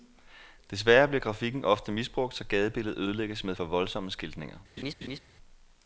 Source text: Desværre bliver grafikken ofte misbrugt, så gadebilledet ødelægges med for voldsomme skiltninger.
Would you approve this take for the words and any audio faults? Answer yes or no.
no